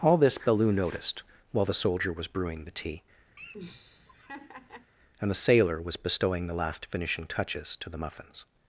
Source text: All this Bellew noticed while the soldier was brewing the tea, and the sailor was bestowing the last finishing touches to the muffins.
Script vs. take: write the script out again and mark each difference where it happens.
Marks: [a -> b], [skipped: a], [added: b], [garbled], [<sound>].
All this Bellew noticed while the soldier was brewing the tea, [laugh] and the sailor was bestowing the last finishing touches to the muffins.